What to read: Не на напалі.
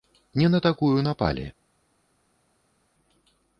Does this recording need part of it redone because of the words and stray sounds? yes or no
yes